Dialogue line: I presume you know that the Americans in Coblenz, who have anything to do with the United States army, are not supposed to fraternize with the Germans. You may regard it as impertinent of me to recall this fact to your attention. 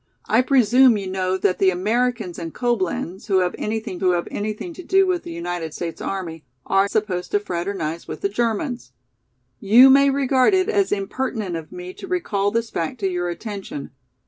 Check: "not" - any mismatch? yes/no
yes